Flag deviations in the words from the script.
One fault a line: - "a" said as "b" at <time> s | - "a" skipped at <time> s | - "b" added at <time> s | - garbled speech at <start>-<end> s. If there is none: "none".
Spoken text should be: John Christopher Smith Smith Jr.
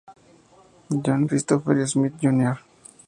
- "Smith" skipped at 2.1 s